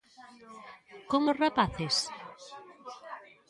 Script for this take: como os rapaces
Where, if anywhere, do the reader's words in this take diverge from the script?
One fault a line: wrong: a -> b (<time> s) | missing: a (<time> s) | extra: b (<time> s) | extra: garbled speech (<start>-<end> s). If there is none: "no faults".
no faults